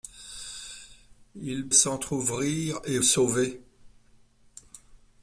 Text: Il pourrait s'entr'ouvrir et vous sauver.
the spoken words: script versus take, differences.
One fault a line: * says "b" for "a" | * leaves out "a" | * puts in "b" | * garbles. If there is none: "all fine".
* leaves out "pourrait"
* leaves out "vous"